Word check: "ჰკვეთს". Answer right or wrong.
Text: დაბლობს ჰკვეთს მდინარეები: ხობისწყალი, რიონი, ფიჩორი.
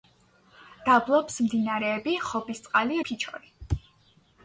wrong